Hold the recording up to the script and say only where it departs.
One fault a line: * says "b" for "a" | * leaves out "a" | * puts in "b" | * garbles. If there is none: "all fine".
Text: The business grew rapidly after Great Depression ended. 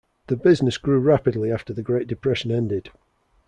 * puts in "the"